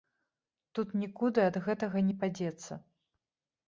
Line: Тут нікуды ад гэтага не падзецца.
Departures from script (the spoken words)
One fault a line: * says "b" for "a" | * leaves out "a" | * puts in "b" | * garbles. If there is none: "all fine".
all fine